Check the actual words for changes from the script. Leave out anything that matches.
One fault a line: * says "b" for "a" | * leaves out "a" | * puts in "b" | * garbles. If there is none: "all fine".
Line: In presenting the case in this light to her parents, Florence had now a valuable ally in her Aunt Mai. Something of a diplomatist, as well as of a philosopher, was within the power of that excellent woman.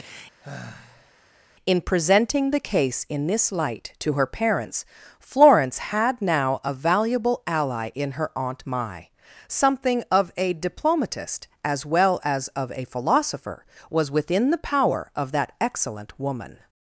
all fine